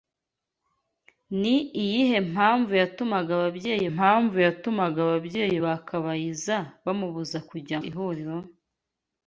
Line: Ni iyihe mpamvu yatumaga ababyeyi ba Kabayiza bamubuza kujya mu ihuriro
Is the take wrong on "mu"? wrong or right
wrong